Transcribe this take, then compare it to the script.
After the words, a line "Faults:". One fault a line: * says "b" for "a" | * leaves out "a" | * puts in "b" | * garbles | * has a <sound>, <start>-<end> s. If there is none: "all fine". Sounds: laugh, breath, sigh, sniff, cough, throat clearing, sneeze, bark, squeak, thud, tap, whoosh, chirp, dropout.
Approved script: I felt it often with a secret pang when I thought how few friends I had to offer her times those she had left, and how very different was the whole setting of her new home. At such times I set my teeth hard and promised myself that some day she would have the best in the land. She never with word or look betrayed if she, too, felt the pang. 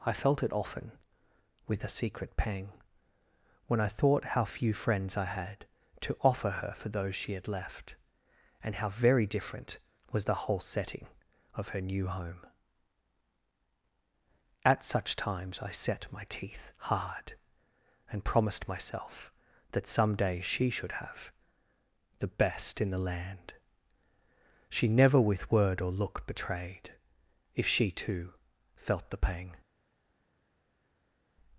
I felt it often with a secret pang when I thought how few friends I had to offer her for those she had left, and how very different was the whole setting of her new home. At such times I set my teeth hard and promised myself that some day she should have the best in the land. She never with word or look betrayed if she, too, felt the pang.
Faults:
* says "for" for "times"
* says "should" for "would"